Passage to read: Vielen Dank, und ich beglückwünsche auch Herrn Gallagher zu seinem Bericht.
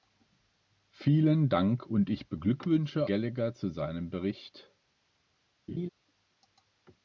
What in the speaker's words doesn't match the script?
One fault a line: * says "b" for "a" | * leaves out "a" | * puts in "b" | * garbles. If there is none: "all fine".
* leaves out "auch Herrn"